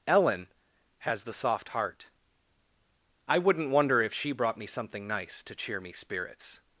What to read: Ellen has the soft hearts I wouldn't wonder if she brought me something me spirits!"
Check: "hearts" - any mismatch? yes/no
yes